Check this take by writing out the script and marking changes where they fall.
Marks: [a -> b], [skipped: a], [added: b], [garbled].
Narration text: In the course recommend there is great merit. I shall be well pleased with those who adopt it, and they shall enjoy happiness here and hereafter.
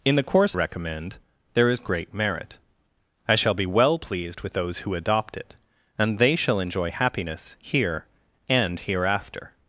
In the course recommend there is great merit. I shall be well pleased with those who adopt it, and they shall enjoy happiness here and hereafter.